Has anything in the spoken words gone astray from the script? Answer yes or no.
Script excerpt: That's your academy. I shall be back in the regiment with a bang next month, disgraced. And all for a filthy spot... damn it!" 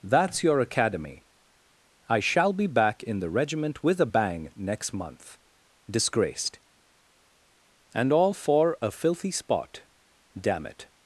no